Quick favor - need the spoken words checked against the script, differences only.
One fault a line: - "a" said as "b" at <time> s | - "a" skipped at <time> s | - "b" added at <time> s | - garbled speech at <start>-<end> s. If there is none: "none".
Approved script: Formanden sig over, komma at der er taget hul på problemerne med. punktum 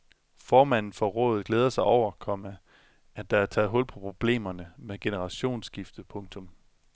- "for rådet glæder" added at 0.9 s
- "generationsskifte" added at 5.0 s